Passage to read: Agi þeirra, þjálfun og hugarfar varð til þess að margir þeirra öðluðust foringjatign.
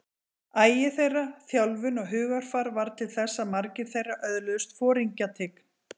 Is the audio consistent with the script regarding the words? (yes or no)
yes